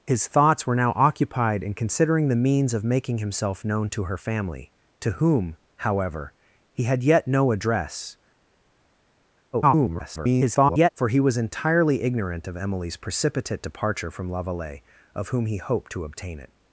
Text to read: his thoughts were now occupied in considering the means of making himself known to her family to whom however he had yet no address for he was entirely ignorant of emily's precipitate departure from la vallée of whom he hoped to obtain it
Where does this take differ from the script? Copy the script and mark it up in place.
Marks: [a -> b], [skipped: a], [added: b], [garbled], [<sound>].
his thoughts were now occupied in considering the means of making himself known to her family to whom however he had yet no address [garbled] for he was entirely ignorant of emily's precipitate departure from la vallée of whom he hoped to obtain it